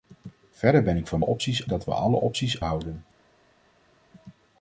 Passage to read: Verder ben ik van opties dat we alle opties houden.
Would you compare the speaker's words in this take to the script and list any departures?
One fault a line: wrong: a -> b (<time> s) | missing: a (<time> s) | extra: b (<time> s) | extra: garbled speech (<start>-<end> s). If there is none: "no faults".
no faults